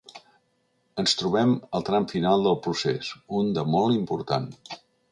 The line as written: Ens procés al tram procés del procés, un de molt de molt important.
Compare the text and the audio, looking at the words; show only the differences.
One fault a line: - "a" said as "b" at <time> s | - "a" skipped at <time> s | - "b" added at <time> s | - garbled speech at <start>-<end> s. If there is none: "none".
- "procés" said as "trobem" at 1.2 s
- "procés" said as "final" at 2.1 s
- "de molt" skipped at 4.0 s